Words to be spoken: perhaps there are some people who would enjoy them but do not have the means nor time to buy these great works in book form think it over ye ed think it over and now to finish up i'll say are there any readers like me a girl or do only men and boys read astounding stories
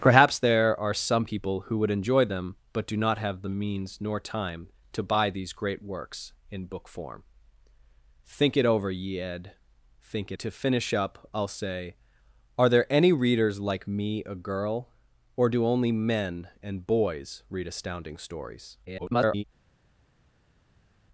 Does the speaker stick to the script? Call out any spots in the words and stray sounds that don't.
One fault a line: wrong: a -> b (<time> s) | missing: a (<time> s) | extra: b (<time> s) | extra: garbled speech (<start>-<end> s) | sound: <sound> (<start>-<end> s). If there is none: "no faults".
missing: over and now (10.4 s)
extra: garbled speech (18.9-19.4 s)